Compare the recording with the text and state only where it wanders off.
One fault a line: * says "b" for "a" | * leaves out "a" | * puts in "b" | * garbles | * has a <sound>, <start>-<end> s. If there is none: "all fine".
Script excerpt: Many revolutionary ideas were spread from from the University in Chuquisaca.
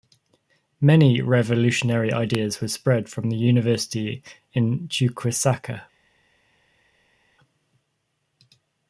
* leaves out "from"